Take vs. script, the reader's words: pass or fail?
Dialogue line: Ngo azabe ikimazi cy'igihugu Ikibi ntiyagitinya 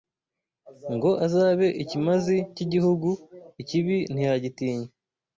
pass